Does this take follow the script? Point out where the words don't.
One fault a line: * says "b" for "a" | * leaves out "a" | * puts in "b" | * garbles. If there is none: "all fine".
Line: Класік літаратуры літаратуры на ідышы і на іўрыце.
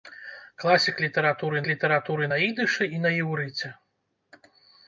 all fine